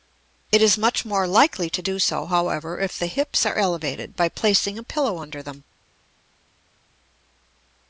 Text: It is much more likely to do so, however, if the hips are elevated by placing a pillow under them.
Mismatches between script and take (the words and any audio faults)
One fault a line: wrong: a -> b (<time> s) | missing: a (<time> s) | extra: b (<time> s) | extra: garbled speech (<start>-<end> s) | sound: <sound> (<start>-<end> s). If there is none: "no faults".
no faults